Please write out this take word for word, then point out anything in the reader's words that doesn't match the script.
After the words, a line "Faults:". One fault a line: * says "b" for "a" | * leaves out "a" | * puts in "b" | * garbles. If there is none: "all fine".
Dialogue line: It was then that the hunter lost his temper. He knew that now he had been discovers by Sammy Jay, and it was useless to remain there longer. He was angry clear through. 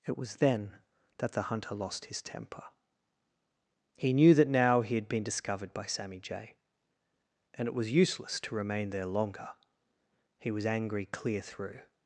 It was then that the hunter lost his temper. He knew that now he had been discovered by Sammy Jay, and it was useless to remain there longer. He was angry clear through.
Faults:
* says "discovered" for "discovers"